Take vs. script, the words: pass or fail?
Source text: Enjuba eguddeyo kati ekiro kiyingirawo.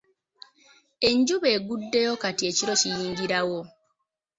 pass